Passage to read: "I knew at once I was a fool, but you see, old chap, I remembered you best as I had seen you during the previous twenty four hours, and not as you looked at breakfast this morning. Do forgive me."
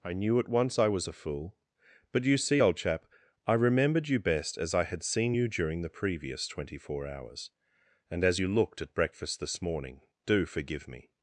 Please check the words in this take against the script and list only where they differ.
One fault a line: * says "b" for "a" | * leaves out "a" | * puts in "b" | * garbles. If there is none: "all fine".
* leaves out "not"